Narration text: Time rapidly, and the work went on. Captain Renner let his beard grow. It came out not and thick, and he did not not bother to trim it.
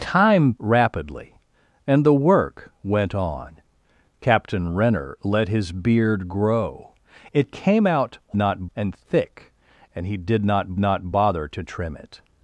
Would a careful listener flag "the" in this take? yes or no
no